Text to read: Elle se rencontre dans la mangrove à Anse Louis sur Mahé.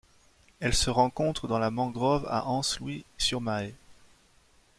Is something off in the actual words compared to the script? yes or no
no